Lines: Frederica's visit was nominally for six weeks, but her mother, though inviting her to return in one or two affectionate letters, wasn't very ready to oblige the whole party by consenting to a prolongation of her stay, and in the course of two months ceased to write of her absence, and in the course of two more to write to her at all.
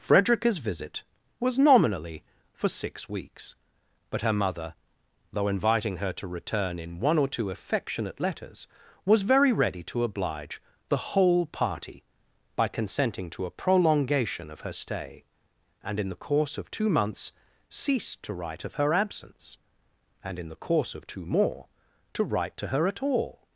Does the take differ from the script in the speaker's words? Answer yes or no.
yes